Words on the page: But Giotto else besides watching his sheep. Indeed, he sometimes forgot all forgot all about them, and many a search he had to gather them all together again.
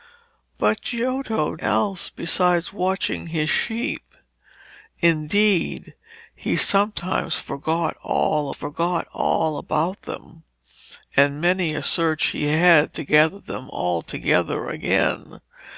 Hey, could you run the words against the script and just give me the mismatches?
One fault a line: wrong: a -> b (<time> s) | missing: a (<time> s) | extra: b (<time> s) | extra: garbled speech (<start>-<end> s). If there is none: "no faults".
no faults